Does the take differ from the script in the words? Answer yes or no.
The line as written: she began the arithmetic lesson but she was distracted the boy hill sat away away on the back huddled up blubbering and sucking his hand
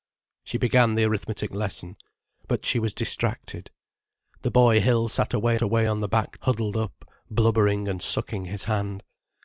no